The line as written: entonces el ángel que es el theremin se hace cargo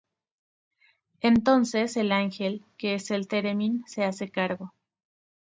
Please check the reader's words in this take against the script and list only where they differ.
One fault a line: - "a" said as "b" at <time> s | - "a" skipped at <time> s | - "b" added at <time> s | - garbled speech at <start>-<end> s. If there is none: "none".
none